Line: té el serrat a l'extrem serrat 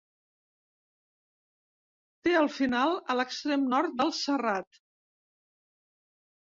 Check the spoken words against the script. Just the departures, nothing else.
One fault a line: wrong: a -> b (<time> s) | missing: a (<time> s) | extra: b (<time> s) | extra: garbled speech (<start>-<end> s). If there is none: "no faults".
wrong: serrat -> final (2.6 s)
extra: nord del (3.8 s)